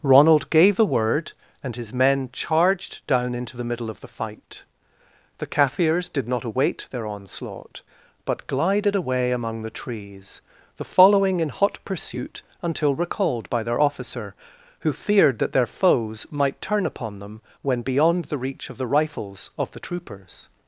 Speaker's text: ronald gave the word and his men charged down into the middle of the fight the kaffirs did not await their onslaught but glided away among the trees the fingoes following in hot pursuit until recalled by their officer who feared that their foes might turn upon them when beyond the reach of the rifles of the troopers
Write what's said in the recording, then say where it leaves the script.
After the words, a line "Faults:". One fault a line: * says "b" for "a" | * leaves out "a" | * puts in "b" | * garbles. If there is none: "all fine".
ronald gave the word and his men charged down into the middle of the fight the kaffirs did not await their onslaught but glided away among the trees the following in hot pursuit until recalled by their officer who feared that their foes might turn upon them when beyond the reach of the rifles of the troopers
Faults:
* leaves out "fingoes"